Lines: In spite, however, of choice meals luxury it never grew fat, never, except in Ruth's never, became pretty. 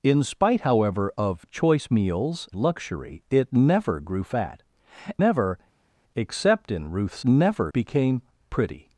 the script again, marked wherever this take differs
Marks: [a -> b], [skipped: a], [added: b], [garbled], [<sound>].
In spite, however, of choice meals luxury it never grew fat, never, except in Ruth's never, became pretty.